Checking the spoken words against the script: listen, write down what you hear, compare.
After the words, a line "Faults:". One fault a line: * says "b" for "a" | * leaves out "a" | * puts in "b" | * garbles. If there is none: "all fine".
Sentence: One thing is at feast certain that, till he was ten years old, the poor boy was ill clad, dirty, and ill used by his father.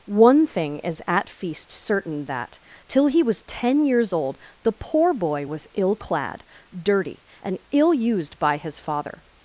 One thing is at feast certain that, till he was ten years old, the poor boy was ill clad, dirty, and ill used by his father.
Faults:
all fine